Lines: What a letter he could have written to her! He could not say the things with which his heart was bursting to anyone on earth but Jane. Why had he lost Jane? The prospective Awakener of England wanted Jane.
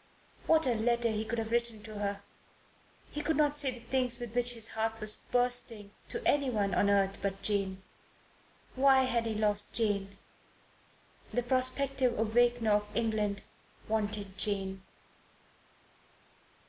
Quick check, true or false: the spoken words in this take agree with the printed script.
true